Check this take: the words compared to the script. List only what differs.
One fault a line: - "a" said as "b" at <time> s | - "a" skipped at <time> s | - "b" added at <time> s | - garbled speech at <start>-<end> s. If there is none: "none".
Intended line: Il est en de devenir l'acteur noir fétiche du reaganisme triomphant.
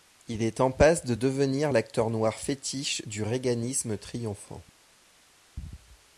- "passe" added at 0.7 s